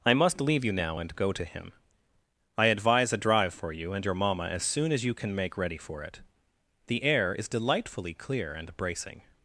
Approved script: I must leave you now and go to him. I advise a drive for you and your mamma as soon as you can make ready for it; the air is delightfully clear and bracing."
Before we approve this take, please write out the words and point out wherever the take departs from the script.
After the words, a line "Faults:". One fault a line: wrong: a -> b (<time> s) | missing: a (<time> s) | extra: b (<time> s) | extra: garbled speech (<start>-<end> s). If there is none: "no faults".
I must leave you now and go to him. I advise a drive for you and your mamma as soon as you can make ready for it; the air is delightfully clear and bracing."
Faults:
no faults